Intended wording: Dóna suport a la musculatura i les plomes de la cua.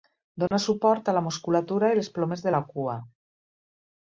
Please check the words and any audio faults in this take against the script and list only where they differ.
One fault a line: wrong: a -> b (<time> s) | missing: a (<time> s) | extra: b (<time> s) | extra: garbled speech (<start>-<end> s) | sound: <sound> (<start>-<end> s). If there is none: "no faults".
sound: dropout (0.5-0.5 s)